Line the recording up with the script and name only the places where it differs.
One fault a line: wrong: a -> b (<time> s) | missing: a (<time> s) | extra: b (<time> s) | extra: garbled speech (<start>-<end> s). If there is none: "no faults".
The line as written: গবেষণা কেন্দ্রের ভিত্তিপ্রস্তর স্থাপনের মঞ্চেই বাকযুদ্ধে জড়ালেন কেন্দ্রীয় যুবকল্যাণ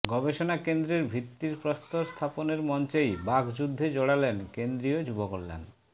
no faults